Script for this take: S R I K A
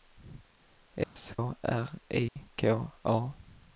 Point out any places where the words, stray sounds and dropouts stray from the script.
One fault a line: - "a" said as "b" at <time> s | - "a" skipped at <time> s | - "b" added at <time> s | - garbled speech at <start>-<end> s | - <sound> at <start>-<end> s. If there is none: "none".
- dropout at 1.0-1.2 s
- dropout at 2.3-2.4 s